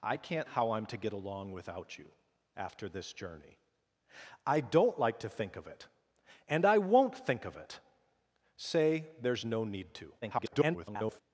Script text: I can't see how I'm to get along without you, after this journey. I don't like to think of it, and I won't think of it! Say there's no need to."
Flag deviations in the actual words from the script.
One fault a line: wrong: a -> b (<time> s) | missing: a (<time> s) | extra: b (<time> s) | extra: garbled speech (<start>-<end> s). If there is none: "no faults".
missing: see (0.5 s)
extra: garbled speech (10.2-11.2 s)